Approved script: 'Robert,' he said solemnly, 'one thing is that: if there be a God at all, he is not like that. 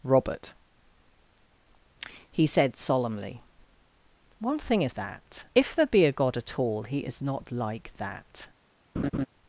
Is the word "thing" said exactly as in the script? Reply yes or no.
yes